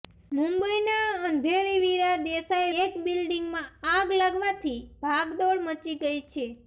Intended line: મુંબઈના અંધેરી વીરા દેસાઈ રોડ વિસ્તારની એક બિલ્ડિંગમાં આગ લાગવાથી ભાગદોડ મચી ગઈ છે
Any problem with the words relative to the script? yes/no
yes